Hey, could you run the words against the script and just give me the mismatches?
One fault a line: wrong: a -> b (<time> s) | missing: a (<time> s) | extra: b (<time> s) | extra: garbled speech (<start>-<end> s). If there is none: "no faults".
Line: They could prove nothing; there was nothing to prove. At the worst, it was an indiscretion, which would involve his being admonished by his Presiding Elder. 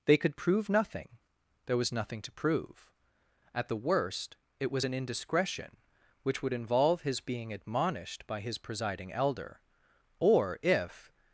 extra: Or if (10.2 s)